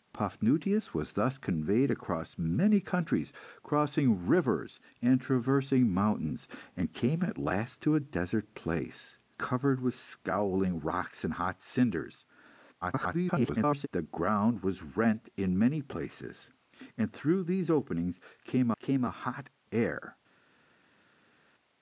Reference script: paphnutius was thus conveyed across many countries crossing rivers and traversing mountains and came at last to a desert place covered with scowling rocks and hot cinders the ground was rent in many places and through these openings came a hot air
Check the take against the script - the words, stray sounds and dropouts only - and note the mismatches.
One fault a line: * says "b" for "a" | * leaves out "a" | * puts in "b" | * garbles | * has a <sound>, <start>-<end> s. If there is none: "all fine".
* garbles
* puts in "came"